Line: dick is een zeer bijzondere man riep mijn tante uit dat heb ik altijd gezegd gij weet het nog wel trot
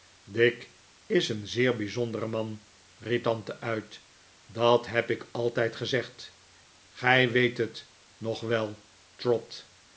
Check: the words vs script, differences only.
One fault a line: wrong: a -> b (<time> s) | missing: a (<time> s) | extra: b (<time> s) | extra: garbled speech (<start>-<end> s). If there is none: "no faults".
missing: mijn (3.2 s)